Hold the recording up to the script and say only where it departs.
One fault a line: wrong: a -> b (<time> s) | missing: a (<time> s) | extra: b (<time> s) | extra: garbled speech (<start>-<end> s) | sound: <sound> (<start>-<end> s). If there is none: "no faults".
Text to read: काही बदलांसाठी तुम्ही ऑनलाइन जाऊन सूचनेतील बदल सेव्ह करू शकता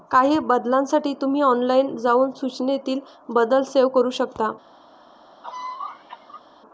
sound: cough (5.4-6.4 s)